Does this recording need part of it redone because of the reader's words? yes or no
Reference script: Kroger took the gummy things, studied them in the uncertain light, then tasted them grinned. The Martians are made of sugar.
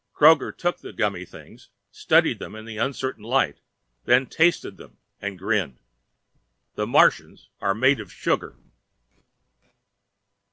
yes